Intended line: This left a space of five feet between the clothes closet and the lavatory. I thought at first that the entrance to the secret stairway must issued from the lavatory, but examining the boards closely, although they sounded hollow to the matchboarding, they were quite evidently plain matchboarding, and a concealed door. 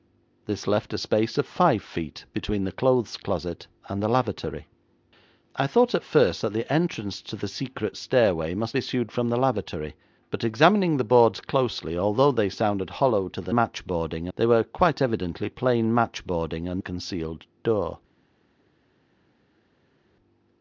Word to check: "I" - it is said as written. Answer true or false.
true